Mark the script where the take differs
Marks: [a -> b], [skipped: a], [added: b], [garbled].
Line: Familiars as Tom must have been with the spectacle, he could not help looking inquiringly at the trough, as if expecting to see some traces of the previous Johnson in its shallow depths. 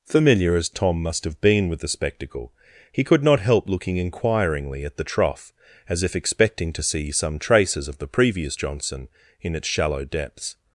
[Familiars -> Familiar] as Tom must have been with the spectacle, he could not help looking inquiringly at the trough, as if expecting to see some traces of the previous Johnson in its shallow depths.